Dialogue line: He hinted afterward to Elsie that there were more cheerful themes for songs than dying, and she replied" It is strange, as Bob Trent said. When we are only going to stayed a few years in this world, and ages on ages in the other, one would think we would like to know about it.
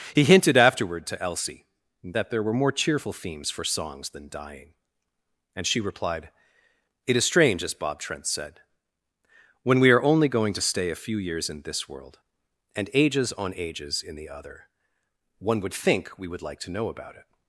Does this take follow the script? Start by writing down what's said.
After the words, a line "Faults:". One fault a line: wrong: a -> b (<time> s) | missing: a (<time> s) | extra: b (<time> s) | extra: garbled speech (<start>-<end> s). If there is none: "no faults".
He hinted afterward to Elsie that there were more cheerful themes for songs than dying, and she replied" It is strange, as Bob Trent said. When we are only going to stay a few years in this world, and ages on ages in the other, one would think we would like to know about it.
Faults:
wrong: stayed -> stay (10.6 s)